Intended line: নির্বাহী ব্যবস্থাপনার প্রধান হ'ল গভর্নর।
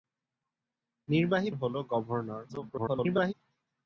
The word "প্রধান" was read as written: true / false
false